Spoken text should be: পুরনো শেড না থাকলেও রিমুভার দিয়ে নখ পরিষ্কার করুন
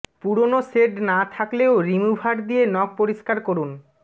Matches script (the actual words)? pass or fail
pass